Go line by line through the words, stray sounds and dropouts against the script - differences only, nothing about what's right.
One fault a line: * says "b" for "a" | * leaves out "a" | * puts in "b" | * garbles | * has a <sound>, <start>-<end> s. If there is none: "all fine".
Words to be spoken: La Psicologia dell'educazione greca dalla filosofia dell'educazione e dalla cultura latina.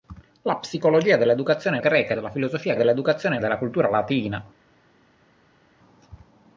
all fine